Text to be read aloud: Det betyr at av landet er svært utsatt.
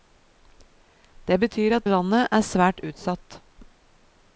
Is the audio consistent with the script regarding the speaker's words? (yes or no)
yes